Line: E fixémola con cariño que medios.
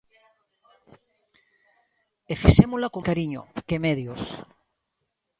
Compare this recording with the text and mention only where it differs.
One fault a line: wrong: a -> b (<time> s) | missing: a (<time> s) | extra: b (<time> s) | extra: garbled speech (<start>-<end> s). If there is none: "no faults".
no faults